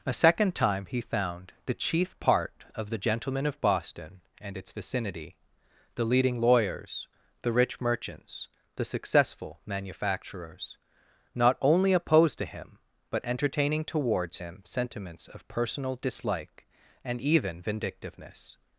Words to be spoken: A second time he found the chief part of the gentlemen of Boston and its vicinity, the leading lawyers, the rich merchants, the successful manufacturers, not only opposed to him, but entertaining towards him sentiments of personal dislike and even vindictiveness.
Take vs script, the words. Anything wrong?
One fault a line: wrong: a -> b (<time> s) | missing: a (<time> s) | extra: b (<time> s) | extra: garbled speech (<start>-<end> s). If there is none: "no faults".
no faults